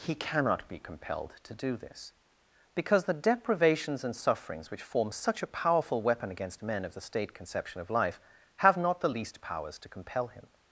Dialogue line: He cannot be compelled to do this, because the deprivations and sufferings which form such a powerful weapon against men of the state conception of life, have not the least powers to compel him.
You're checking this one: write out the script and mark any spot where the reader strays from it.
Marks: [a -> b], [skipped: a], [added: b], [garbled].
He cannot be compelled to do this, because the deprivations and sufferings which form such a powerful weapon against men of the state conception of life, have not the least powers to compel him.